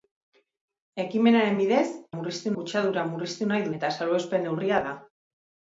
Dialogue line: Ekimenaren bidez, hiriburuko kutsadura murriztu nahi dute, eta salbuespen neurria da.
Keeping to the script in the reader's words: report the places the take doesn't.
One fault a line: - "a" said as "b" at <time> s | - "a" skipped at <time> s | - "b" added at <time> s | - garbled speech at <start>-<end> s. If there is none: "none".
- "hiriburuko" said as "murriztu" at 2.2 s
- "dute" skipped at 3.7 s